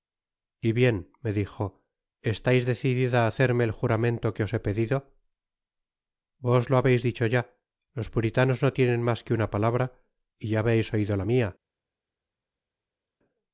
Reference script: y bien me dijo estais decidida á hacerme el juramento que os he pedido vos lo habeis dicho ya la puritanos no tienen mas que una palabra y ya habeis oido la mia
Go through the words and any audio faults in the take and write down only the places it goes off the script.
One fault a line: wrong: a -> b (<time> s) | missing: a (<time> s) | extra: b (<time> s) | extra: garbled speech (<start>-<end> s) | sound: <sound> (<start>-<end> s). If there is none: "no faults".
wrong: la -> los (8.0 s)